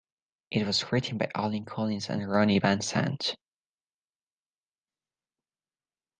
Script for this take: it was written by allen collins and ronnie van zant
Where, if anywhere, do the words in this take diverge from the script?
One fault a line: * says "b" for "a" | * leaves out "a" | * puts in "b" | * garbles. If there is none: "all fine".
all fine